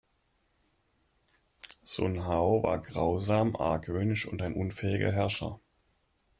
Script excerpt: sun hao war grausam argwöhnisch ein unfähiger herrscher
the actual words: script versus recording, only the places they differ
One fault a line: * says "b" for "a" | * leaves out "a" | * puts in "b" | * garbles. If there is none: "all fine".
* puts in "und"